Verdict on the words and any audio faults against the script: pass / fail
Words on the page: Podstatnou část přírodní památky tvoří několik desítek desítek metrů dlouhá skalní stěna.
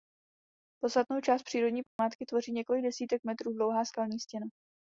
fail